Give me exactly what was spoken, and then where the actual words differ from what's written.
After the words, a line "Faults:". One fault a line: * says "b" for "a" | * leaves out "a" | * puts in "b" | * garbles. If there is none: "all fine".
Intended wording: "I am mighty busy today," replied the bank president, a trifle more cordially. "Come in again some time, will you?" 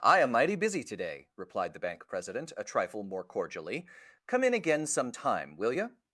"I am mighty busy today," replied the bank president, a trifle more cordially. "Come in again some time, will you?"
Faults:
all fine